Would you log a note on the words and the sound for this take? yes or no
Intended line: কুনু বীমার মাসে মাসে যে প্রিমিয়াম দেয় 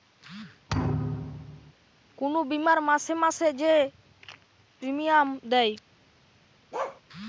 yes